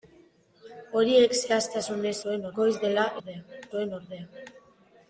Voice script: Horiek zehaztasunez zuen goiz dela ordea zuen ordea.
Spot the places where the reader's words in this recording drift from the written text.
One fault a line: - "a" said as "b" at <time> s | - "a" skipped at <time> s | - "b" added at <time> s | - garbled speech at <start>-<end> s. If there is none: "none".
none